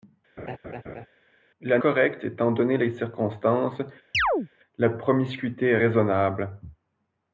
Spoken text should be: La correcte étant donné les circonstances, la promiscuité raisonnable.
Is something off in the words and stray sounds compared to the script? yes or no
yes